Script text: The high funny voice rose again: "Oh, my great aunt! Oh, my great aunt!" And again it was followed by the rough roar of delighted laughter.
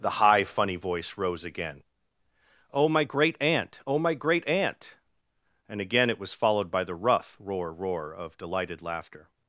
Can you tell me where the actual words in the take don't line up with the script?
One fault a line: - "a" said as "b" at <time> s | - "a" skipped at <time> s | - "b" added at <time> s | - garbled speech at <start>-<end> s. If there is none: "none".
- "roar" added at 7.7 s